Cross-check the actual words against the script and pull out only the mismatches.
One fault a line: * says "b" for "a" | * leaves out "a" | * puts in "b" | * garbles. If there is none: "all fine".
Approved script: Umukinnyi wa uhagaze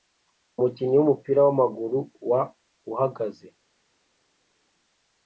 * puts in "wumupira wamaguru"